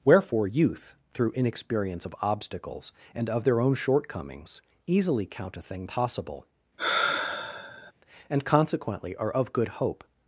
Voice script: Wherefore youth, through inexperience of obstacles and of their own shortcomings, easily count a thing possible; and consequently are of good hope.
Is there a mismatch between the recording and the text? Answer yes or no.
no